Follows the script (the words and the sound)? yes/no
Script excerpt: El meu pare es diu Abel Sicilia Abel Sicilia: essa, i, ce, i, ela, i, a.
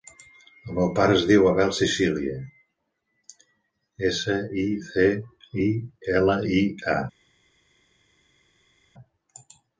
no